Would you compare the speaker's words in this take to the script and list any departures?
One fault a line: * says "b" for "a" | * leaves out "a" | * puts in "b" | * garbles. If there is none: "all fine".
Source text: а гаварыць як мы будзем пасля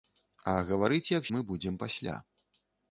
all fine